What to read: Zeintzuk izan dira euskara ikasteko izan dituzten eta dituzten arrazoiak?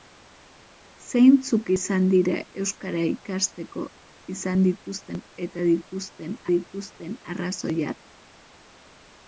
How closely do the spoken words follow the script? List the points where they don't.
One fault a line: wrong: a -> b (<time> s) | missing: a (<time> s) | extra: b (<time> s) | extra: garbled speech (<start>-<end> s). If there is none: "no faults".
extra: dituzten (6.5 s)